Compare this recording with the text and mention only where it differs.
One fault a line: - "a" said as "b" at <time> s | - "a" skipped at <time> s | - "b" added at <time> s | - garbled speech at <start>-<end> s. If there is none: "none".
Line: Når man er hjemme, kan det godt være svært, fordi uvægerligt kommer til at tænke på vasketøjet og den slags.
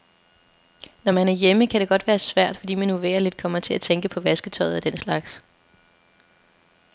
- "man" added at 2.7 s